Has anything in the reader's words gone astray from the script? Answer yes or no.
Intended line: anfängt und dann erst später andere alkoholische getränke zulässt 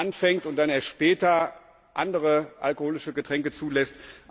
no